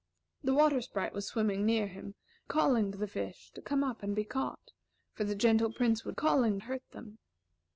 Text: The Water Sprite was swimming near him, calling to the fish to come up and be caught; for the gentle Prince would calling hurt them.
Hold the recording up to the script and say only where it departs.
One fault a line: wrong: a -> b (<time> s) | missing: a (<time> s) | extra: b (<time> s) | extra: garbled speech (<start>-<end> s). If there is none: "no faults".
no faults